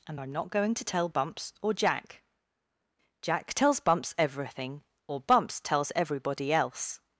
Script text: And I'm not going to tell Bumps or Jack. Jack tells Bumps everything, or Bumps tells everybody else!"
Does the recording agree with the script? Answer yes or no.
yes